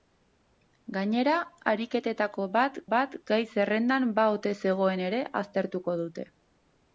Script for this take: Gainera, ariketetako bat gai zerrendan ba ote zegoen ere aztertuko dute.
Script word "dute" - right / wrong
right